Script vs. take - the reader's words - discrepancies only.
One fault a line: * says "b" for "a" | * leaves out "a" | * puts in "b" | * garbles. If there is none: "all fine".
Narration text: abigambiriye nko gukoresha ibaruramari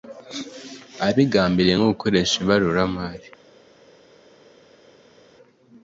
all fine